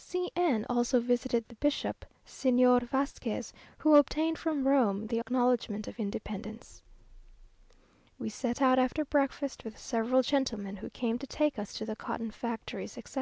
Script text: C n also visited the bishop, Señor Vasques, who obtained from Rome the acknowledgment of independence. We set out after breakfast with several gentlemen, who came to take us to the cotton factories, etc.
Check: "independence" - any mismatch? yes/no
no